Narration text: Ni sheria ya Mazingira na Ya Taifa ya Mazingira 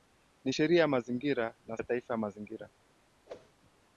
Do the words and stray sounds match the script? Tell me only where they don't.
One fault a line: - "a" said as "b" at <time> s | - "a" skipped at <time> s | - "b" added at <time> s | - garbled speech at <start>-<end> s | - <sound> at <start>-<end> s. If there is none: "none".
- whoosh at 3.3-3.5 s